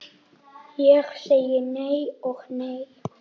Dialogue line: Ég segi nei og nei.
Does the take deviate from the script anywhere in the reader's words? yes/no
no